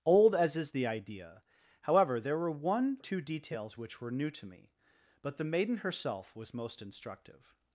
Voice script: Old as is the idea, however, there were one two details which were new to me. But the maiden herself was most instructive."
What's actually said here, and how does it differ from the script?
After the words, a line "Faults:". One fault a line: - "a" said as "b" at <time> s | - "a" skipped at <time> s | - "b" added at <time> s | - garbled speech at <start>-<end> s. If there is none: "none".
Old as is the idea, however, there were one two details which were new to me. But the maiden herself was most instructive."
Faults:
none